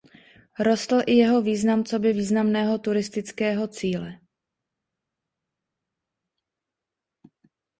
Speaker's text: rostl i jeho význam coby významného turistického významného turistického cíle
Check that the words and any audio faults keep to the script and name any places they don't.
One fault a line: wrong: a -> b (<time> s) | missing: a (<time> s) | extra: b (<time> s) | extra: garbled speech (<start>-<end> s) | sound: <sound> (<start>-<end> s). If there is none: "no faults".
missing: významného turistického (3.7 s)